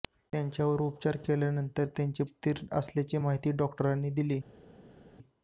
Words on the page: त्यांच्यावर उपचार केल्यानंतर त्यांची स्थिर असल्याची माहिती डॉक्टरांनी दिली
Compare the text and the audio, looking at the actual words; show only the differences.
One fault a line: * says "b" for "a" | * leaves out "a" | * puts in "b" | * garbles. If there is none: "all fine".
all fine